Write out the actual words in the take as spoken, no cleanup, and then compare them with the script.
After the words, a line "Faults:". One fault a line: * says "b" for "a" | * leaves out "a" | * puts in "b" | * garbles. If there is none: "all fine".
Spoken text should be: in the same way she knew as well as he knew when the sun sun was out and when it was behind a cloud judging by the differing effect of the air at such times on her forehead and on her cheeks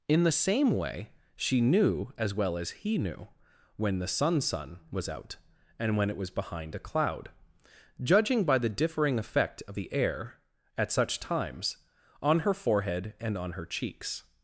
in the same way she knew as well as he knew when the sun sun was out and when it was behind a cloud judging by the differing effect of the air at such times on her forehead and on her cheeks
Faults:
all fine